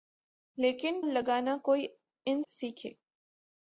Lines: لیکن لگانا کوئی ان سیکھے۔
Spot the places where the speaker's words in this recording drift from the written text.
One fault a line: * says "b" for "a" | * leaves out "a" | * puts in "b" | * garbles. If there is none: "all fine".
all fine